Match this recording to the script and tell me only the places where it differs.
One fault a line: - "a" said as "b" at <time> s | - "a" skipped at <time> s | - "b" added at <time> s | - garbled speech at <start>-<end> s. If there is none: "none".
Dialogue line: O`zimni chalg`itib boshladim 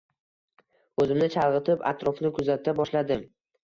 - "atrofni kuzata" added at 1.9 s